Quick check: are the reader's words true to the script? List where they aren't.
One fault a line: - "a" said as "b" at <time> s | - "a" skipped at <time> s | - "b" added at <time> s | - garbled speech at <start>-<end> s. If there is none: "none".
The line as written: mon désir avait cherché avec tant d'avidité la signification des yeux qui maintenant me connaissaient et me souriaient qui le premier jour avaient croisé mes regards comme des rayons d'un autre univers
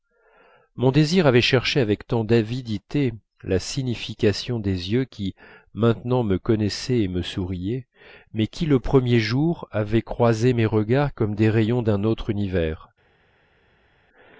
- "mais" added at 8.3 s